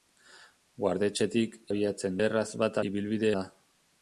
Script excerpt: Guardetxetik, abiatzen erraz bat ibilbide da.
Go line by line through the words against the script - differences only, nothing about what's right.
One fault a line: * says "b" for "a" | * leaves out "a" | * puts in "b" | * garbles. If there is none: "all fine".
all fine